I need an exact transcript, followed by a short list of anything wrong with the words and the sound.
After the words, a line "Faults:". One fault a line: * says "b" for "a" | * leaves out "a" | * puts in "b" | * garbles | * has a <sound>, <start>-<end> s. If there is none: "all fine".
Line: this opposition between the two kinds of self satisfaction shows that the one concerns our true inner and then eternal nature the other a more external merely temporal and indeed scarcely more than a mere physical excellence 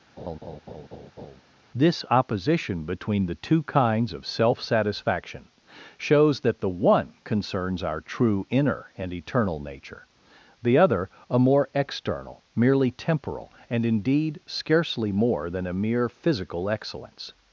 this opposition between the two kinds of self satisfaction shows that the one concerns our true inner and eternal nature the other a more external merely temporal and indeed scarcely more than a mere physical excellence
Faults:
* has a laugh, 0.2-1.4 s
* leaves out "then"